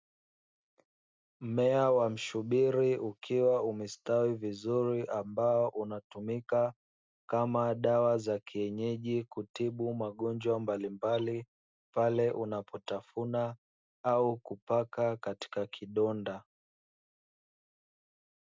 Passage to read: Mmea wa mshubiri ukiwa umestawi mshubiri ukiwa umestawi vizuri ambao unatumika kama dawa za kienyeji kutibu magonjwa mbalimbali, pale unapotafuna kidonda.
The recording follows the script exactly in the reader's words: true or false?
false